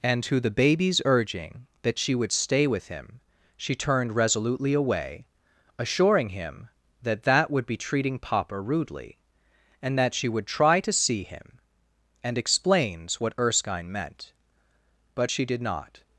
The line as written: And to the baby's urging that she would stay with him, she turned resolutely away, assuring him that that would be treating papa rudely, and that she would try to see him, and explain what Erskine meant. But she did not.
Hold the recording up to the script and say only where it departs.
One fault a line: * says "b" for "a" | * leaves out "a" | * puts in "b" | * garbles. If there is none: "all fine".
* says "explains" for "explain"